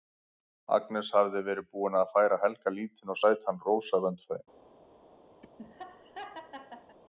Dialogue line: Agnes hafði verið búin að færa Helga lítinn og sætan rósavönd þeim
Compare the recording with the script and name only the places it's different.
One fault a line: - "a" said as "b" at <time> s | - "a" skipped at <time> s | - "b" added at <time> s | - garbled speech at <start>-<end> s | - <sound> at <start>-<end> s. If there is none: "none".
- laugh at 5.4-7.0 s